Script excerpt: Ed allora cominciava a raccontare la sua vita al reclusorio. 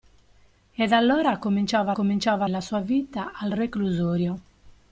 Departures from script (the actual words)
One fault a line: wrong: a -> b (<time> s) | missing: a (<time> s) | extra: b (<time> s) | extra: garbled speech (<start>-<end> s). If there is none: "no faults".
wrong: raccontare -> cominciava (1.9 s)